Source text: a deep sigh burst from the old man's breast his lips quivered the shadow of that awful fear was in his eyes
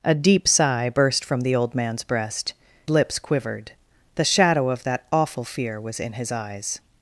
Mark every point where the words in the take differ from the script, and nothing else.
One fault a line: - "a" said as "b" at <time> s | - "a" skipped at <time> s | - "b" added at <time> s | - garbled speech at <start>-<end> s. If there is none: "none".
- "his" skipped at 2.5 s